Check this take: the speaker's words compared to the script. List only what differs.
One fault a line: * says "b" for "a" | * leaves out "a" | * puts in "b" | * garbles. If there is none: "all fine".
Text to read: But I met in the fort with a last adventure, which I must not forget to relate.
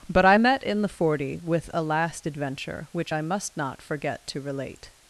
* says "forty" for "fort"